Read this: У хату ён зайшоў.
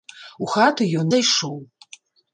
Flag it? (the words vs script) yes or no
no